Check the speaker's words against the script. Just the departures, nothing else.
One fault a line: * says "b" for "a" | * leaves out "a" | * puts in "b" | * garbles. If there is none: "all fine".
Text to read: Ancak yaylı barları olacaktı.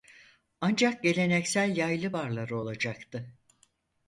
* puts in "geleneksel"